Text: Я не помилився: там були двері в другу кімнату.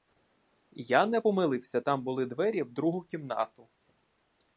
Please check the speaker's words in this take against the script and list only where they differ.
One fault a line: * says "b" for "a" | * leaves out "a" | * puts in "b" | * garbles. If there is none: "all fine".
all fine